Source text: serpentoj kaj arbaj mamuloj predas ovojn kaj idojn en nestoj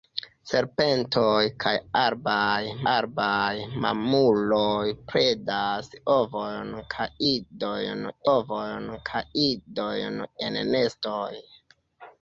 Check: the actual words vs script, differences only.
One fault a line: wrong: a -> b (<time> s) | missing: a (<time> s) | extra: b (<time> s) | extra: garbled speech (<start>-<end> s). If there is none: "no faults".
extra: arbaj (2.9 s)
extra: ovojn kaj idojn (8.3 s)